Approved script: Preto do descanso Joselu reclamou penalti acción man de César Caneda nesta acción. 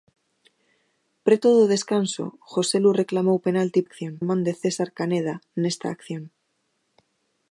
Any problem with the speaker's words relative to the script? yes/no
no